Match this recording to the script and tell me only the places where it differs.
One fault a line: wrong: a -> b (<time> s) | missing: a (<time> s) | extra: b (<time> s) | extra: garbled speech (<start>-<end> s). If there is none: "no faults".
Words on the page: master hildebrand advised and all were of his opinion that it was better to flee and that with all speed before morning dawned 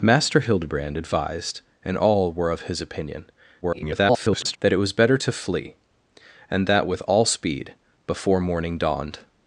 extra: garbled speech (3.6-4.6 s)